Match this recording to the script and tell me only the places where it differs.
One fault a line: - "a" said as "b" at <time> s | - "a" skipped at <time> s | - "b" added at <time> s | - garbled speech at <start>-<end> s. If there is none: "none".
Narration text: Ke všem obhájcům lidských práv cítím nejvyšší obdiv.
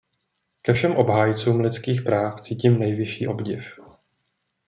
none